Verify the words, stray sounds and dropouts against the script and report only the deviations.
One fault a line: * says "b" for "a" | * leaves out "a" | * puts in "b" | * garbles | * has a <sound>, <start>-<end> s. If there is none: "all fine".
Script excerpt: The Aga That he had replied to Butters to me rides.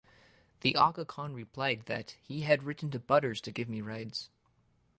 * puts in "Khan replied"
* says "written" for "replied"
* puts in "give"